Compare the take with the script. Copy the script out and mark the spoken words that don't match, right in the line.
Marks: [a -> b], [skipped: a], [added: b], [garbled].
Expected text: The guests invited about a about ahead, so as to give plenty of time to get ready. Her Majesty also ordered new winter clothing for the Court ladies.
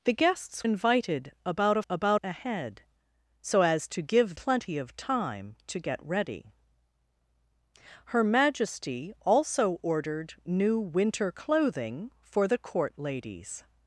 The guests invited about a about ahead, so as to give plenty of time to get ready. Her Majesty also ordered new winter clothing for the Court ladies.